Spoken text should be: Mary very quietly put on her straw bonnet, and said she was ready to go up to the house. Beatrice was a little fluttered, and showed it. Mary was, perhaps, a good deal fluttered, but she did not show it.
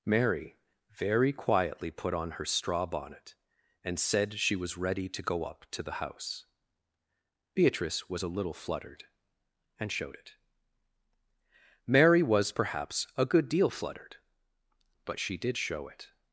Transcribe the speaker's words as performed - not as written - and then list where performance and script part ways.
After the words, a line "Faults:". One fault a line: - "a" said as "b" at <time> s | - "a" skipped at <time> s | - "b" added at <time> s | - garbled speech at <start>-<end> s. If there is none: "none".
Mary very quietly put on her straw bonnet, and said she was ready to go up to the house. Beatrice was a little fluttered, and showed it. Mary was, perhaps, a good deal fluttered, but she did show it.
Faults:
- "not" skipped at 15.6 s